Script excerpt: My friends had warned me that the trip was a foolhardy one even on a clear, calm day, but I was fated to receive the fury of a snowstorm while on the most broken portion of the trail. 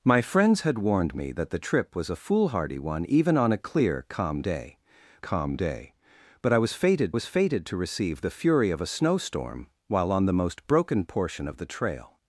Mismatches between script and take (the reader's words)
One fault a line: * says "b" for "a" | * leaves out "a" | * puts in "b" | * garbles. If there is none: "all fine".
* puts in "calm day"
* puts in "was fated"